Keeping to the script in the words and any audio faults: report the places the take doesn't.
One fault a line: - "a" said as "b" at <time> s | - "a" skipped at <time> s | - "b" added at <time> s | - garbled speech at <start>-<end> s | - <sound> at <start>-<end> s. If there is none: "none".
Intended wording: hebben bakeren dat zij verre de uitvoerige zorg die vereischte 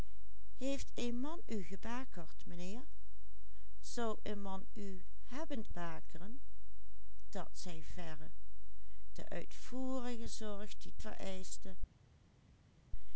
none